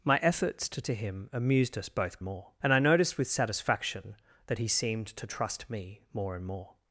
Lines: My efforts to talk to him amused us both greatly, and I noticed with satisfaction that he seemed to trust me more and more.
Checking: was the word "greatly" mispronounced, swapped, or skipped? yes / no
yes